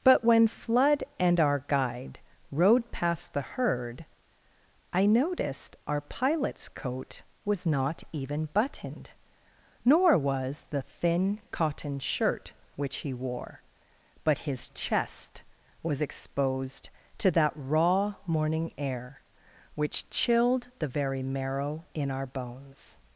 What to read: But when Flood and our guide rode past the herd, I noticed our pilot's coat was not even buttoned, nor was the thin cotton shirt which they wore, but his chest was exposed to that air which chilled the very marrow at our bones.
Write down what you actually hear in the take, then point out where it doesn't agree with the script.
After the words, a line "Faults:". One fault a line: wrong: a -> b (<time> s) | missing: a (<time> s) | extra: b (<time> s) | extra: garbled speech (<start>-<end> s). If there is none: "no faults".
But when Flood and our guide rode past the herd, I noticed our pilot's coat was not even buttoned, nor was the thin cotton shirt which he wore, but his chest was exposed to that raw morning air which chilled the very marrow in our bones.
Faults:
wrong: they -> he (13.0 s)
extra: raw morning (17.6 s)
wrong: at -> in (21.9 s)